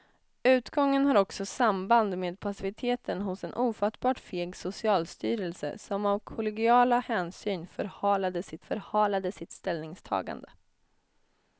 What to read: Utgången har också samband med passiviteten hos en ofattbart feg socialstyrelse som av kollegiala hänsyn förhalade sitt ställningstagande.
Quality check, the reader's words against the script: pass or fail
fail